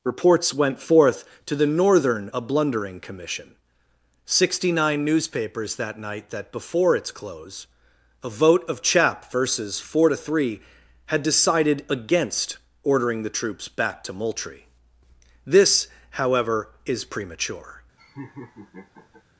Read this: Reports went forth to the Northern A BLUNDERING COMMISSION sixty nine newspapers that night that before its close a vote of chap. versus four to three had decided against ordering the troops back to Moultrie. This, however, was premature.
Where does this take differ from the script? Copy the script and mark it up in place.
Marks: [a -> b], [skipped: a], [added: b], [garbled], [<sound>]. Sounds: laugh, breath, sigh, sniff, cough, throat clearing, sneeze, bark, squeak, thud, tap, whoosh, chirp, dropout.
Reports went forth to the Northern A BLUNDERING COMMISSION sixty nine newspapers that night that before its close a vote of chap. versus four to three had decided against ordering the troops back to Moultrie. This, however, [was -> is] premature. [laugh]